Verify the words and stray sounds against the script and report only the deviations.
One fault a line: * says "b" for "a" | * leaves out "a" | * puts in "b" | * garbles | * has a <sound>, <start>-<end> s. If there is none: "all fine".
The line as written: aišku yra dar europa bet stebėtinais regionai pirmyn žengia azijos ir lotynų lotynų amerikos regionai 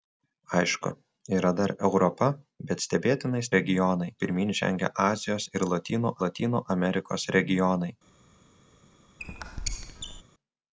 * has a squeak, 9.2-10.2 s